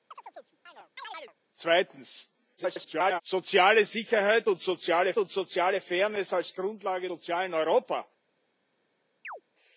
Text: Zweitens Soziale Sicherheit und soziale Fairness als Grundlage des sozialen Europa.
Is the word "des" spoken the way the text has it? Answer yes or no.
no